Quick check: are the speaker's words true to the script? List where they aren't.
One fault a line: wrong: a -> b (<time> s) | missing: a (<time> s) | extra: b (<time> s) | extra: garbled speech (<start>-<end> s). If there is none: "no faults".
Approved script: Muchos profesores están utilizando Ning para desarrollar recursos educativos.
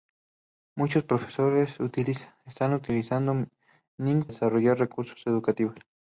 missing: para (4.2 s)